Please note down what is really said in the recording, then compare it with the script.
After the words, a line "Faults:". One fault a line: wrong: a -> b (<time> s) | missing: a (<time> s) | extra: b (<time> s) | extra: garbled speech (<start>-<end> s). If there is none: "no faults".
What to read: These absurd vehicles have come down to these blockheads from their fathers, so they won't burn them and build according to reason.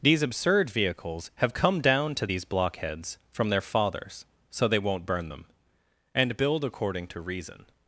These absurd vehicles have come down to these blockheads from their fathers, so they won't burn them and build according to reason.
Faults:
no faults